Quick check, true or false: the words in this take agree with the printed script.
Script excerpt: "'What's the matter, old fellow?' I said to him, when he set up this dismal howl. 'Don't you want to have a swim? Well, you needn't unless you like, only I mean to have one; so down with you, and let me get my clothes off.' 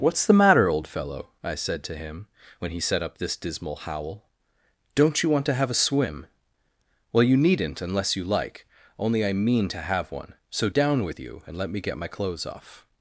true